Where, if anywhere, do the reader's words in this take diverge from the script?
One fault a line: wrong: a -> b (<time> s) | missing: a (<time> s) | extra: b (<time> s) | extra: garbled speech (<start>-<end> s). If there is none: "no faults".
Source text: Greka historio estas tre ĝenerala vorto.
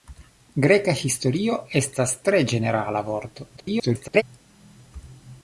extra: garbled speech (3.6-4.2 s)